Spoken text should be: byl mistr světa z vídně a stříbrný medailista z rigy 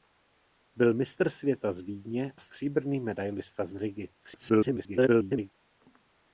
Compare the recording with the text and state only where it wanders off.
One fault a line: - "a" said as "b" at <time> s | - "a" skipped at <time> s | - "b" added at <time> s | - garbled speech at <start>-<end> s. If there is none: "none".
- "a" skipped at 2.3 s
- garbled speech at 4.2-5.5 s